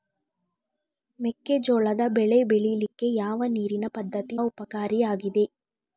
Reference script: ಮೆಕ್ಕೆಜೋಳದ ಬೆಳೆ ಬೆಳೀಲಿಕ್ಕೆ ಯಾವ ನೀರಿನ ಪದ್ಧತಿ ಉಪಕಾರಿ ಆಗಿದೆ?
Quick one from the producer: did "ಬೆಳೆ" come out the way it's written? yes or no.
yes